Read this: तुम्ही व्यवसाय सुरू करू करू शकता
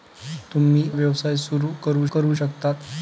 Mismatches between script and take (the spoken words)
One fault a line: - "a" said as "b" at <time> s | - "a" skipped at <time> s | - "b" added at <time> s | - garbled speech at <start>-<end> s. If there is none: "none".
none